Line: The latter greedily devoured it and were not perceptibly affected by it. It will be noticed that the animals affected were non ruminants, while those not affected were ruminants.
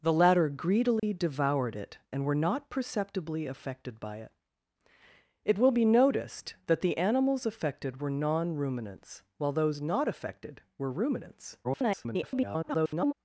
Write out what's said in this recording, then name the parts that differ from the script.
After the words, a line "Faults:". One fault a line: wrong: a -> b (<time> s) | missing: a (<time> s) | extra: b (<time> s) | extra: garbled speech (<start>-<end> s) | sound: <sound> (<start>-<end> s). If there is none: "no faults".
The latter greedily devoured it and were not perceptibly affected by it. It will be noticed that the animals affected were non ruminants, while those not affected were ruminants. [garbled]
Faults:
sound: dropout (1.0-1.0 s)
extra: garbled speech (11.6-13.1 s)